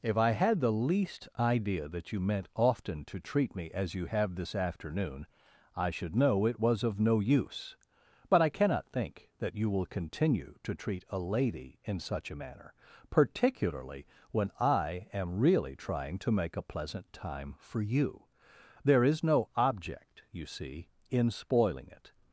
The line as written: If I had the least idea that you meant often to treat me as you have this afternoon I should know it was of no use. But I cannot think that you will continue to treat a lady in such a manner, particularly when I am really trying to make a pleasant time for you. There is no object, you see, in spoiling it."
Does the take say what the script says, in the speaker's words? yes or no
yes